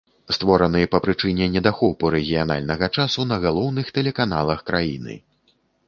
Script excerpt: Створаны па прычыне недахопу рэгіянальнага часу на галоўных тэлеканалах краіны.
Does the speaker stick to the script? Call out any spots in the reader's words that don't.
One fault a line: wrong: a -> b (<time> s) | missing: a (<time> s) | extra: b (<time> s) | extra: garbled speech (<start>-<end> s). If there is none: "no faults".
no faults